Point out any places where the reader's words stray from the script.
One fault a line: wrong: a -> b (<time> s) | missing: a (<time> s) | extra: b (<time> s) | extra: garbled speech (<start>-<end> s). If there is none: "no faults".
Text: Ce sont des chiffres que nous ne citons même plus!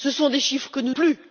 missing: ne citons même (0.9 s)